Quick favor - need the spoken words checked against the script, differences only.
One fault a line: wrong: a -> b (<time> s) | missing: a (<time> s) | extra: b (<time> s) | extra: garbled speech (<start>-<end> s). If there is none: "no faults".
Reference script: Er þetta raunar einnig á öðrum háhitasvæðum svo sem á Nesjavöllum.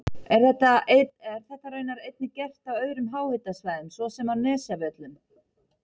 extra: gert (2.4 s)